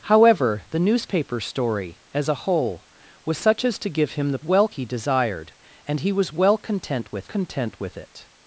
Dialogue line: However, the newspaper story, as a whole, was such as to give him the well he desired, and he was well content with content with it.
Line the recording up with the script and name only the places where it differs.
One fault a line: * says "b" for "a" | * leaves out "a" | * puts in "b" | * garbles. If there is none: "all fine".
all fine